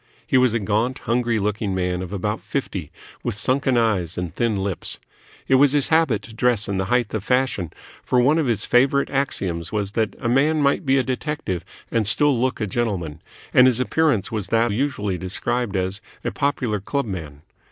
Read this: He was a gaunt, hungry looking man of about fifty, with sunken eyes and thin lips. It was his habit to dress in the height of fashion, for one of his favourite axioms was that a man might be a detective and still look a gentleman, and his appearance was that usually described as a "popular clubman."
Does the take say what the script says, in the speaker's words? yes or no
yes